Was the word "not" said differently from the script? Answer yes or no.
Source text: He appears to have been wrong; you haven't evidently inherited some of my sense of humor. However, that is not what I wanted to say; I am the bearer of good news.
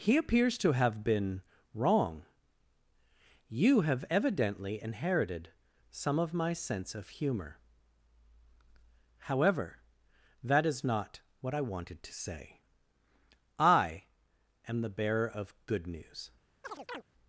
no